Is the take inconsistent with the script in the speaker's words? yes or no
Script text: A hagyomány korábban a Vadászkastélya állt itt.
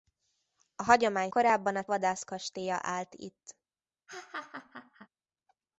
no